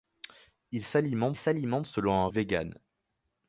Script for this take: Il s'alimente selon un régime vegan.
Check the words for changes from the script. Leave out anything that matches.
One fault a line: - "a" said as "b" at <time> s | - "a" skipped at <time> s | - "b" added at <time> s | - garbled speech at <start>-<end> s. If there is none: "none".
- "s'alimente" added at 1.4 s
- "régime" skipped at 2.3 s